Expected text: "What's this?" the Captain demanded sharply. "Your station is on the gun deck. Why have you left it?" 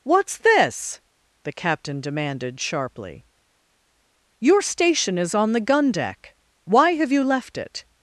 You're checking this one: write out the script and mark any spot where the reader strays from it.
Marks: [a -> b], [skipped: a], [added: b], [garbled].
"What's this?" the Captain demanded sharply. "Your station is on the gun deck. Why have you left it?"